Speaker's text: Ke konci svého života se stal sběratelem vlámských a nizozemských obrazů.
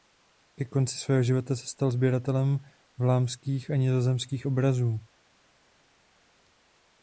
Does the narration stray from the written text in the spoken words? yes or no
no